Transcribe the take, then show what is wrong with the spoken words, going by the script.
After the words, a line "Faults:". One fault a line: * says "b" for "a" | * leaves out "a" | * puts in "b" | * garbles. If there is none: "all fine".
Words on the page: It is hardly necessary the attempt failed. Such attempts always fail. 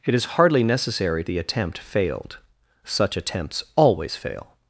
It is hardly necessary the attempt failed. Such attempts always fail.
Faults:
all fine